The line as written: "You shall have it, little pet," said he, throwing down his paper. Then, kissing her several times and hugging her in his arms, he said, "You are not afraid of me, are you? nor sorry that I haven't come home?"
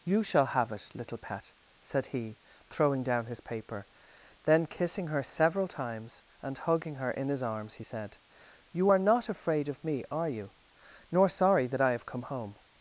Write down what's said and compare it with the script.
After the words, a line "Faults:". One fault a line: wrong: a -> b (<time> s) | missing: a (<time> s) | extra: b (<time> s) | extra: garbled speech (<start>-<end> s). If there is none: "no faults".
"You shall have it, little pet," said he, throwing down his paper. Then, kissing her several times and hugging her in his arms, he said, "You are not afraid of me, are you? nor sorry that I have come home?"
Faults:
wrong: haven't -> have (11.9 s)